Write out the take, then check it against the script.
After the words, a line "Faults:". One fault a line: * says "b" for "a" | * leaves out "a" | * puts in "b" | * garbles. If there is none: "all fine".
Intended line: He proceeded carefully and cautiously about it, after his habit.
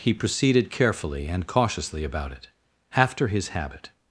He proceeded carefully and cautiously about it, after his habit.
Faults:
all fine